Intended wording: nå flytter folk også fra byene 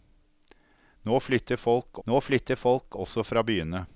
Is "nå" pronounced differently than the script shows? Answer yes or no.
no